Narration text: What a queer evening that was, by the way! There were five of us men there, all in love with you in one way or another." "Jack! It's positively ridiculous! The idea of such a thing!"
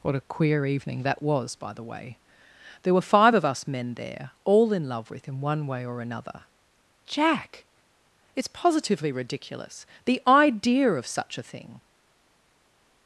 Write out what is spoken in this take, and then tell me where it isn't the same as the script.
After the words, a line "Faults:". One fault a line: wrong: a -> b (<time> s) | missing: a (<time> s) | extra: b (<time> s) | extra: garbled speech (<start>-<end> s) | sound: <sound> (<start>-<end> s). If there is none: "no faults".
What a queer evening that was, by the way! There were five of us men there, all in love with in one way or another." "Jack! It's positively ridiculous! The idea of such a thing!"
Faults:
missing: you (5.3 s)